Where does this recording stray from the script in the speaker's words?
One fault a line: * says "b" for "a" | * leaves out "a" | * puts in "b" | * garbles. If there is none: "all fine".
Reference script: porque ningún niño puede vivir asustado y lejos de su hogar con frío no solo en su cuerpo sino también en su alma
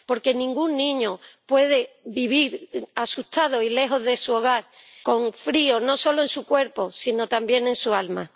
all fine